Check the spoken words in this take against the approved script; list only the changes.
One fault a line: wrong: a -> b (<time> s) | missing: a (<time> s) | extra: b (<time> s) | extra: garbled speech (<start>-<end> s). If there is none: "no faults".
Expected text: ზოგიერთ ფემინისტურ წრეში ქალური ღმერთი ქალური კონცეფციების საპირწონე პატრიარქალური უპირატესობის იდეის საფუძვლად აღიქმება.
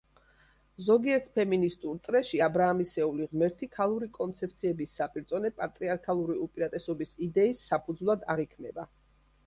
wrong: ქალური -> აბრაამისეული (2.5 s)